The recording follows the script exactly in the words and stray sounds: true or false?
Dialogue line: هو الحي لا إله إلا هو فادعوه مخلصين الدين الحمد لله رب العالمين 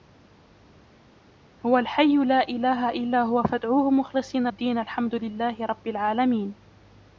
true